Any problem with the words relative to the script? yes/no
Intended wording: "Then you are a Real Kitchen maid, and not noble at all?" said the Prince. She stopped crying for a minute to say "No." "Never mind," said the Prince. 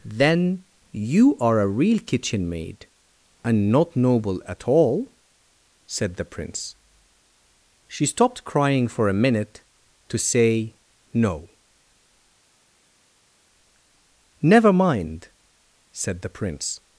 no